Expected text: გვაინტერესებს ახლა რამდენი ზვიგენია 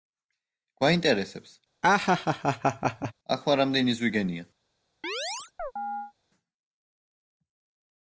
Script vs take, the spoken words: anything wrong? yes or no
no